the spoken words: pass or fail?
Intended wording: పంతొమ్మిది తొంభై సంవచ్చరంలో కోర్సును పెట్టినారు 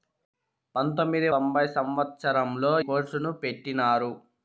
pass